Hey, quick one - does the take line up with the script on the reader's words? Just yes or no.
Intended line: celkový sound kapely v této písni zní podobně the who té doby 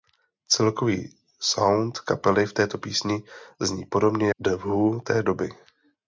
yes